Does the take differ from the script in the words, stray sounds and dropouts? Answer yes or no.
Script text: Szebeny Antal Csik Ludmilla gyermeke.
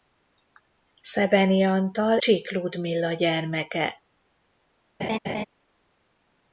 yes